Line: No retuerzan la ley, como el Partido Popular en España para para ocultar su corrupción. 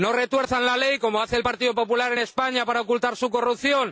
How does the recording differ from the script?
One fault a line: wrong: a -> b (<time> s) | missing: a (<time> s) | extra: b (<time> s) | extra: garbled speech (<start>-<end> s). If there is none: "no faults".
extra: hace (1.2 s)
missing: para (2.8 s)